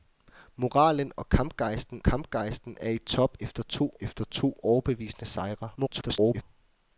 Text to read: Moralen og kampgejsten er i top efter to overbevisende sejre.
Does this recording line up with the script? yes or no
no